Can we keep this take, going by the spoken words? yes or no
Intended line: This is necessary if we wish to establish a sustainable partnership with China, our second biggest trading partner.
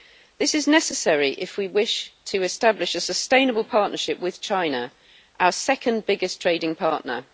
yes